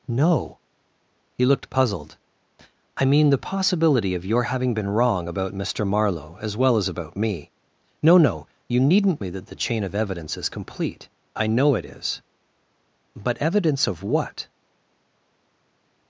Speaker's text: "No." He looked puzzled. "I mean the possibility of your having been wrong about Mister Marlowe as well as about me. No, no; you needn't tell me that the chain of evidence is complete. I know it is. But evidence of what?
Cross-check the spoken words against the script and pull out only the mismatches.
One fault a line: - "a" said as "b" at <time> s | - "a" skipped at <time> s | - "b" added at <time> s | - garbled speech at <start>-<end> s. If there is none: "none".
- "tell" skipped at 9.2 s